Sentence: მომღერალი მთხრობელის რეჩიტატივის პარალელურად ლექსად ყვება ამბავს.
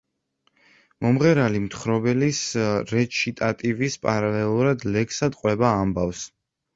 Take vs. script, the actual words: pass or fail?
pass